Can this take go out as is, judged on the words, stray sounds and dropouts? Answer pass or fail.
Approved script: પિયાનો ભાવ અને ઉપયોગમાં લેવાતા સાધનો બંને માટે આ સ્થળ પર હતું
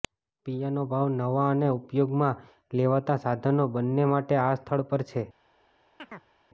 fail